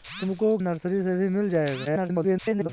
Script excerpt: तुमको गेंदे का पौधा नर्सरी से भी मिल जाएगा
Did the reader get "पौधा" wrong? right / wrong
wrong